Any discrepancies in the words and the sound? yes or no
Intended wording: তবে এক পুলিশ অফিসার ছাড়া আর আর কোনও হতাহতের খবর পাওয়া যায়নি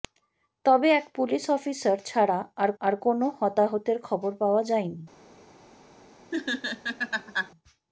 yes